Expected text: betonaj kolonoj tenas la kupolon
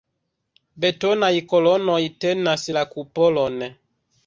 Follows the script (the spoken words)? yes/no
yes